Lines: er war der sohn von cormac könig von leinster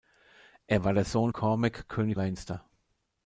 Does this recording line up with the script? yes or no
no